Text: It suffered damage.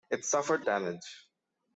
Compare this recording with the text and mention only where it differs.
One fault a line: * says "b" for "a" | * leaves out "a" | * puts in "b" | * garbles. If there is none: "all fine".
all fine